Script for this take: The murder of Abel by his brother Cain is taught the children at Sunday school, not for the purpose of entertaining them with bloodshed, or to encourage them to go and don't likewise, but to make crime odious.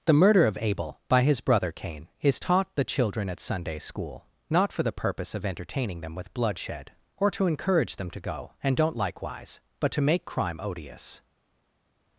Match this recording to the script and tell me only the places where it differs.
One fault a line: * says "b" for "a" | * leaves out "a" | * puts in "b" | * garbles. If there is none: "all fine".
all fine